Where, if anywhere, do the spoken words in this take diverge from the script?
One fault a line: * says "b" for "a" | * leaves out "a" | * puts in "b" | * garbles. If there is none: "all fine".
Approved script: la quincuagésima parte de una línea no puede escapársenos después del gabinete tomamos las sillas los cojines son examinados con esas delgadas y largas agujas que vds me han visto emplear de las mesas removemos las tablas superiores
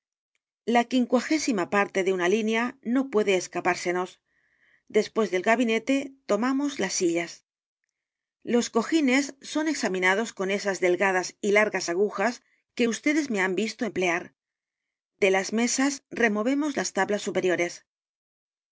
all fine